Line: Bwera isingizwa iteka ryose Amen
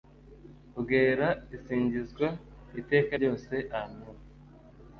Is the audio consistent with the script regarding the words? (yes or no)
yes